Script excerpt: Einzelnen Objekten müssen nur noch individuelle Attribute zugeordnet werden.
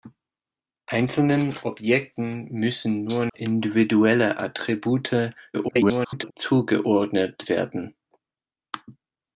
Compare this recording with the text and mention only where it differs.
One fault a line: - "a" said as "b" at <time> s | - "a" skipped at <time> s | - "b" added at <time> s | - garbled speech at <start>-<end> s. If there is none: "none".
- "noch" skipped at 3.3 s
- garbled speech at 5.5-6.3 s